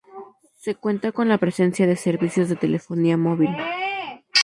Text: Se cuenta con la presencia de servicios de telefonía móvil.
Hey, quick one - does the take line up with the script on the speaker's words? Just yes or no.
yes